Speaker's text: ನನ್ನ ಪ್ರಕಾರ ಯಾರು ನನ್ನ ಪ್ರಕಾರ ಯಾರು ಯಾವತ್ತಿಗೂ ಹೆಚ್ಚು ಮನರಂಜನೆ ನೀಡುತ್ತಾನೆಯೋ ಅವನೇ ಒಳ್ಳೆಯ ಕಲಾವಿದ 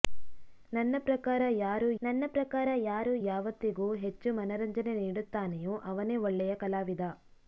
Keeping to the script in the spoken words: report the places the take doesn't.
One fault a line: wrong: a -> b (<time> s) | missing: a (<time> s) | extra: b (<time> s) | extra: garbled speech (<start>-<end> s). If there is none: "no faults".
no faults